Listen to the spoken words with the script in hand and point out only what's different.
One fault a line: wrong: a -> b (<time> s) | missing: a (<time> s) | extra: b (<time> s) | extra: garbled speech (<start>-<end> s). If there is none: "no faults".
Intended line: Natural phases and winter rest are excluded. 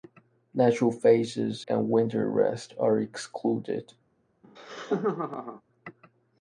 no faults